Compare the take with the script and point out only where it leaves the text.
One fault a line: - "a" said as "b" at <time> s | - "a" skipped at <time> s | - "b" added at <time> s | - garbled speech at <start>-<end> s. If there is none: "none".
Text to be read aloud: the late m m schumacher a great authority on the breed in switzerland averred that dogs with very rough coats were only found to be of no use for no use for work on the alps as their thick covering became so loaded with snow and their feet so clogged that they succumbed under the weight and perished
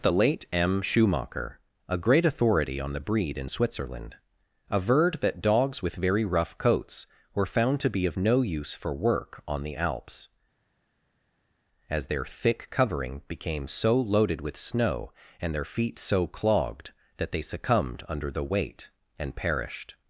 - "m" skipped at 0.8 s
- "only" skipped at 7.4 s
- "no use for" skipped at 8.9 s